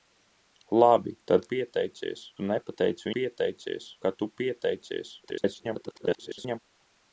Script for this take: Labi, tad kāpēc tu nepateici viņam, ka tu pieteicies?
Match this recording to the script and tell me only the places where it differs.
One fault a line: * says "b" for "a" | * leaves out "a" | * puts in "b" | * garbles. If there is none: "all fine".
* says "pieteicies" for "kāpēc"
* says "pieteicies" for "viņam"
* garbles